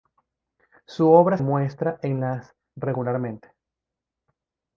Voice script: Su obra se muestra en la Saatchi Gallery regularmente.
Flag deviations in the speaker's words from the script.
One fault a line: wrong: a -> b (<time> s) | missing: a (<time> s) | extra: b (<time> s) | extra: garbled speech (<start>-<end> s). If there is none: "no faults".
missing: se (1.4 s)
missing: Saatchi Gallery (2.5 s)